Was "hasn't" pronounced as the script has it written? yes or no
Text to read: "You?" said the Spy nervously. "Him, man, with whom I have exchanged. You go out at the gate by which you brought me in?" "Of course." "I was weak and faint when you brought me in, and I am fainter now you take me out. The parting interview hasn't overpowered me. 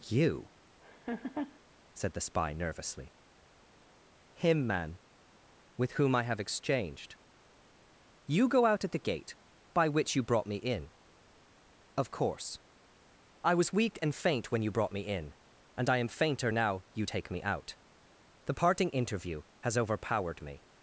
no